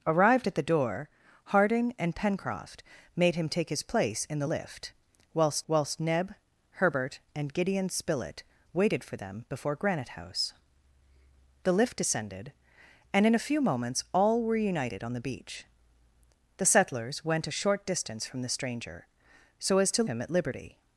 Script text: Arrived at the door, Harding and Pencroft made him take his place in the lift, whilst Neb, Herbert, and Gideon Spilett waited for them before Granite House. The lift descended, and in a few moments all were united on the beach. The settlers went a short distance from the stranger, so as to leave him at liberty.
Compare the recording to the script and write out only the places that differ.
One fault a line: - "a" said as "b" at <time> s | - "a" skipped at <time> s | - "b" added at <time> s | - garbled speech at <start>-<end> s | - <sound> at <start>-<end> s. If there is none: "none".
- "whilst" added at 5.7 s
- "leave" skipped at 20.0 s